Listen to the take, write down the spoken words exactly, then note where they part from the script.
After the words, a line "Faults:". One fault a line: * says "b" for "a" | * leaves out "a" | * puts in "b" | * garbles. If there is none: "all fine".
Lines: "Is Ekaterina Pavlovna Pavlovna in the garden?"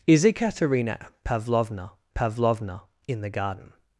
"Is Ekaterina Pavlovna Pavlovna in the garden?"
Faults:
all fine